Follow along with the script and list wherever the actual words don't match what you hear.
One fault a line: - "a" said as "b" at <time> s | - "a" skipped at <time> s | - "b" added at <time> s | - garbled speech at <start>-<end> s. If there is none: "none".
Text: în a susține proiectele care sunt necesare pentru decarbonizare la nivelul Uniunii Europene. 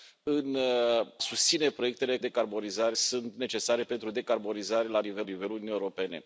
- "a" skipped at 0.6 s
- "care" said as "decarbonizare" at 2.2 s
- "nivelul" added at 5.2 s